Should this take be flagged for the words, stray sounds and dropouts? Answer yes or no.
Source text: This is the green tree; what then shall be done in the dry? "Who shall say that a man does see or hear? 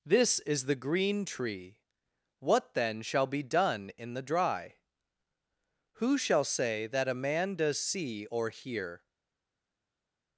no